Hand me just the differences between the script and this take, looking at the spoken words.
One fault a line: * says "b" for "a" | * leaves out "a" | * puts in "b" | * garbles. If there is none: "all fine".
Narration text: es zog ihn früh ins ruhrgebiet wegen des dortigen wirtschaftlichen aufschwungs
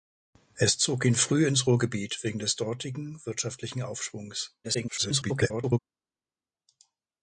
* garbles